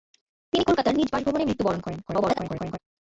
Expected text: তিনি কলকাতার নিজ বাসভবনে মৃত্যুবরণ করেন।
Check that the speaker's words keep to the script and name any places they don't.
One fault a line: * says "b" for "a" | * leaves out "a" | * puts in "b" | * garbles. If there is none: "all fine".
* garbles